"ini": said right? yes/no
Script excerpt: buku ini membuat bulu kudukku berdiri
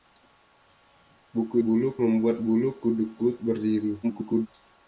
no